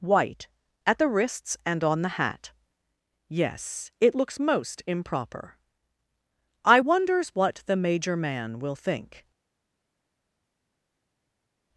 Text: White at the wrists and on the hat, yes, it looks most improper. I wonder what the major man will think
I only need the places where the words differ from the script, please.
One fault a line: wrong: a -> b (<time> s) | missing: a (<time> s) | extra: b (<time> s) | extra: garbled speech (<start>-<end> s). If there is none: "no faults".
wrong: wonder -> wonders (6.8 s)